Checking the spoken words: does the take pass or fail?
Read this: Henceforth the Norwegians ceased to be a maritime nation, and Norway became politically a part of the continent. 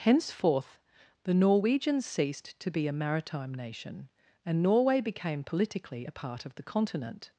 pass